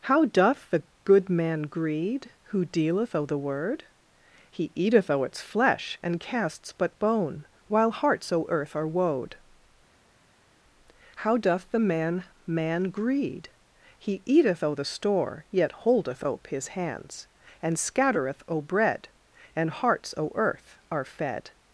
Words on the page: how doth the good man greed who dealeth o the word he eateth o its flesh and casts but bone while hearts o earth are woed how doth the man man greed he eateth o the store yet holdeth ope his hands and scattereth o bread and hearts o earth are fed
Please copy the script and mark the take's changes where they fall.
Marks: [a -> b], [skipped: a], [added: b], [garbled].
how doth the good man greed who dealeth o the word he eateth o its flesh and casts but bone while hearts o earth are woed how doth the man man greed he eateth o the store yet holdeth ope his hands and scattereth o bread and hearts o earth are fed